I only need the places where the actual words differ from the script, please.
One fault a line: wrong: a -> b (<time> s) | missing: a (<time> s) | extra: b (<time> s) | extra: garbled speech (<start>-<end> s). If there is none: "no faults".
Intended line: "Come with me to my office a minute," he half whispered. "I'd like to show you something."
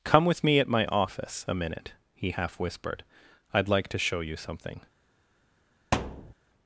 wrong: to -> at (0.6 s)